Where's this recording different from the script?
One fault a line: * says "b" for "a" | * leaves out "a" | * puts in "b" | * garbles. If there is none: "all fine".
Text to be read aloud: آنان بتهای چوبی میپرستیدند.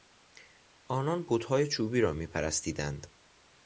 * puts in "را"